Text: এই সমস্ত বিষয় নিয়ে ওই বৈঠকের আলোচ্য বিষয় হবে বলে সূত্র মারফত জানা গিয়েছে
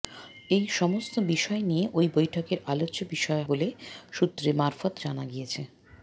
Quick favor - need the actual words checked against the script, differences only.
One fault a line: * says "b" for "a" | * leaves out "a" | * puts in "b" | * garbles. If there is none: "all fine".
* leaves out "হবে"